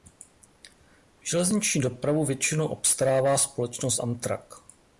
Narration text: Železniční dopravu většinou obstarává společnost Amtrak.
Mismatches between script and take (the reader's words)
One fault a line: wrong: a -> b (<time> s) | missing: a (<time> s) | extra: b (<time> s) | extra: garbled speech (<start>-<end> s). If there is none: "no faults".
no faults